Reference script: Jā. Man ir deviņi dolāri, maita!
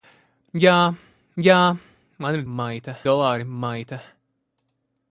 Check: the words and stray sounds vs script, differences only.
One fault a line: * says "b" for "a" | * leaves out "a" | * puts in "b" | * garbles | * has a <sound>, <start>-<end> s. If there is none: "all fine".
* puts in "jā"
* says "maita" for "deviņi"